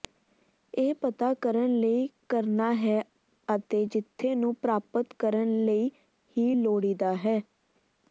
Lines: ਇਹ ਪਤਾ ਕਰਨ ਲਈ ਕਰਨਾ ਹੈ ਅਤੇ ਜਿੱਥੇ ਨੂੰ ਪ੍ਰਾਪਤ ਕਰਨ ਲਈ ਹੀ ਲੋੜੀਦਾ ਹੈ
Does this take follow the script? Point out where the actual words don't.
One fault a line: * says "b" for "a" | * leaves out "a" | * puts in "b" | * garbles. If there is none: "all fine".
all fine